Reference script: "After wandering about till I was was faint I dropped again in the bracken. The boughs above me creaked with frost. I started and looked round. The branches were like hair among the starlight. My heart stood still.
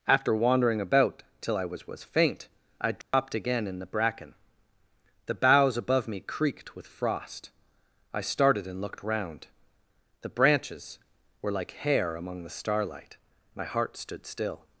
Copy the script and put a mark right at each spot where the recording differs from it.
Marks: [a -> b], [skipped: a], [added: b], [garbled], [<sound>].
"After wandering about till I was was faint I dropped [dropout] again in the bracken. The boughs above me creaked with frost. I started and looked round. The branches were like hair among the starlight. My heart stood still.